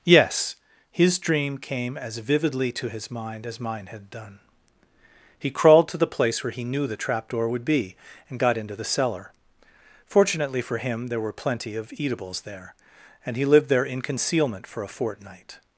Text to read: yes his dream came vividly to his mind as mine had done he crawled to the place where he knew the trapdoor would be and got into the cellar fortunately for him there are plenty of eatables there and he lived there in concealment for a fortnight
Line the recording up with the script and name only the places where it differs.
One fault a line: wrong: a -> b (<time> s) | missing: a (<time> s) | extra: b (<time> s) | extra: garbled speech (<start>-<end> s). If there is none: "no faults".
extra: as (2.0 s)
wrong: are -> were (11.2 s)